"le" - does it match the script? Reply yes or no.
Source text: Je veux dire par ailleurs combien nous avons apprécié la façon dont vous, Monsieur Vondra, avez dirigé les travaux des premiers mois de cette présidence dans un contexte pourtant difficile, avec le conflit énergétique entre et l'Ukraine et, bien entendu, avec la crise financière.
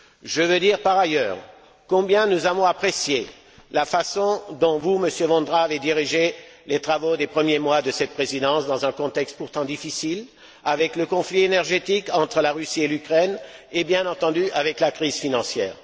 yes